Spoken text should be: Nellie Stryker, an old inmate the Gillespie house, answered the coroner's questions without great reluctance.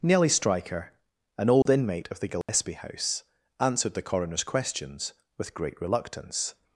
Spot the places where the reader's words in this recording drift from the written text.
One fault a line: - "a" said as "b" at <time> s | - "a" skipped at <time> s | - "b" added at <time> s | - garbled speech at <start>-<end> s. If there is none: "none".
- "of" added at 2.1 s
- "without" said as "with" at 5.4 s